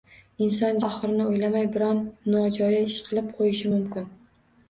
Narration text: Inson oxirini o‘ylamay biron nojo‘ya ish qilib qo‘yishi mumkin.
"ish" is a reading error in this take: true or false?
false